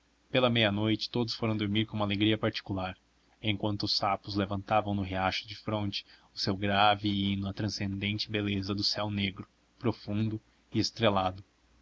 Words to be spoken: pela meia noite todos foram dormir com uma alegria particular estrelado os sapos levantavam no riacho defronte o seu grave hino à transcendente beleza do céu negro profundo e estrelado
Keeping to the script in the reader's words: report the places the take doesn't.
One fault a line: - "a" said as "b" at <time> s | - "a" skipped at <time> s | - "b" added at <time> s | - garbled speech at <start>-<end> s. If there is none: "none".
- "estrelado" said as "enquanto" at 3.4 s